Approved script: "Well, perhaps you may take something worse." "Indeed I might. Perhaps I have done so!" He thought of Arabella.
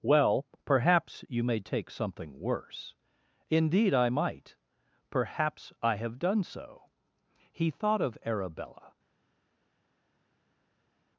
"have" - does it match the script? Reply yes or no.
yes